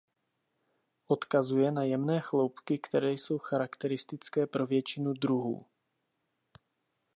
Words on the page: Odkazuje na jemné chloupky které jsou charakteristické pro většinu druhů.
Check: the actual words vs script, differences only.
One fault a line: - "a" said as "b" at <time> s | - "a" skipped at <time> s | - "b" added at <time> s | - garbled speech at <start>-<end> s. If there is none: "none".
none